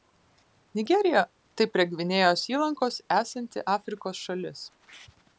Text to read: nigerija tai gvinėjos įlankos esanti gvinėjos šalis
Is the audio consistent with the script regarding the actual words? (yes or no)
no